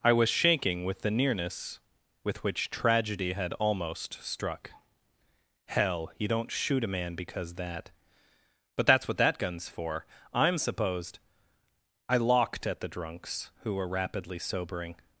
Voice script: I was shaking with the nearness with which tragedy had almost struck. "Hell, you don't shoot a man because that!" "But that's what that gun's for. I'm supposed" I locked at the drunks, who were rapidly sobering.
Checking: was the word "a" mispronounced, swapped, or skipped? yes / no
no